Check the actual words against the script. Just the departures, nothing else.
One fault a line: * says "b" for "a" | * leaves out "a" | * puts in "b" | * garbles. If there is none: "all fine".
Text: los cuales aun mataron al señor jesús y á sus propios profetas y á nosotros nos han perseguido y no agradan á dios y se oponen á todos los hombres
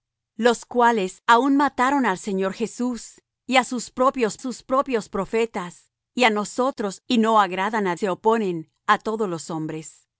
* puts in "sus propios"
* leaves out "nos han perseguido"
* leaves out "dios y"